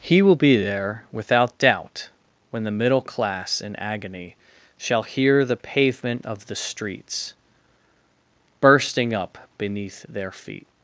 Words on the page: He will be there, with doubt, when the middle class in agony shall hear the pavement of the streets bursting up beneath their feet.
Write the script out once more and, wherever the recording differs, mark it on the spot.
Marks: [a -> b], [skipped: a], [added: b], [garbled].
He will be there, [with -> without] doubt, when the middle class in agony shall hear the pavement of the streets bursting up beneath their feet.